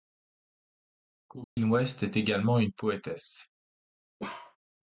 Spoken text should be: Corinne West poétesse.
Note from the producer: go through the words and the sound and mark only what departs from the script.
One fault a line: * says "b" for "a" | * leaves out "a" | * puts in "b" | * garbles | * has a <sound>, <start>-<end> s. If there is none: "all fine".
* has a dropout, 1.4-1.6 s
* puts in "est également une"
* has a bark, 4.2-4.6 s